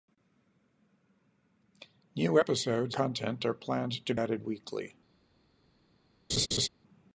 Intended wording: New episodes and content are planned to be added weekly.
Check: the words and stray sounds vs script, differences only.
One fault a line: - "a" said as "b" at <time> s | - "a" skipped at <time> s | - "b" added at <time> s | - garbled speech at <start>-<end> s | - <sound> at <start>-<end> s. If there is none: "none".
- "and" skipped at 3.0 s
- "be" skipped at 4.1 s
- laugh at 6.3-6.7 s